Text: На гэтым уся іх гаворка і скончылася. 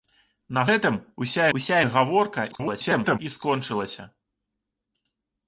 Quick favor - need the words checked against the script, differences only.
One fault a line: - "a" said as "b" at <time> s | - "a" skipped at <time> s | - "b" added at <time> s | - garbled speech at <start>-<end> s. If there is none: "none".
- "уся" added at 1.6 s
- garbled speech at 2.5-3.2 s